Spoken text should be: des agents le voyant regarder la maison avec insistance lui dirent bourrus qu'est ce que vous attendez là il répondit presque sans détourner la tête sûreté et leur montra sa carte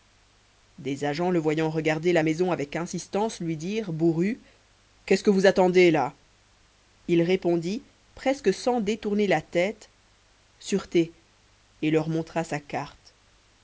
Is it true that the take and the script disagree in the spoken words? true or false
false